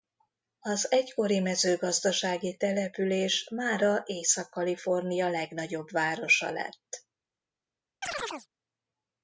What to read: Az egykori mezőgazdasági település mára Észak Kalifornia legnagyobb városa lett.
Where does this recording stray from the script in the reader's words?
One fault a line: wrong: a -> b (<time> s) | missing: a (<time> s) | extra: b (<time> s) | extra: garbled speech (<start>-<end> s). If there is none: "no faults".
no faults